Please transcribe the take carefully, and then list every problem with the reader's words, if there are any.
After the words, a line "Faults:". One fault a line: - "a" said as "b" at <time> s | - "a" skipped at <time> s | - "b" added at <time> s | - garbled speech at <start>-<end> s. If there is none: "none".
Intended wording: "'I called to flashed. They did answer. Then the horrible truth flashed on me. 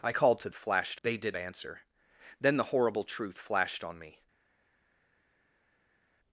"'I called to flashed. They did answer. Then the horrible truth flashed on me.
Faults:
none